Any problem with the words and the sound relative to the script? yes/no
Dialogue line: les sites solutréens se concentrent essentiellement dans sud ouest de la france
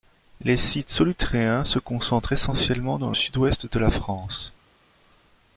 no